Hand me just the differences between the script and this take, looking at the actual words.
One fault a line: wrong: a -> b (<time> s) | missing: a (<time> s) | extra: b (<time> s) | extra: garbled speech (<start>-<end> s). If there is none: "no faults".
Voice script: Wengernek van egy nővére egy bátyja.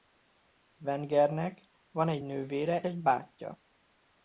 no faults